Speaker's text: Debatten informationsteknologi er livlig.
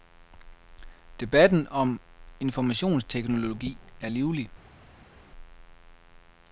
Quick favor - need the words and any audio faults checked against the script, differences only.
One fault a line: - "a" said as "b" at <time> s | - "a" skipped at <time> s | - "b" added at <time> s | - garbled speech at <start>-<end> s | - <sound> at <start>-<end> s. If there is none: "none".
- "om" added at 1.7 s